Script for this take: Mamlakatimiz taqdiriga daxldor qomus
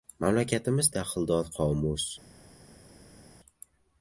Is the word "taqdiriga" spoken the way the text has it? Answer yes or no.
no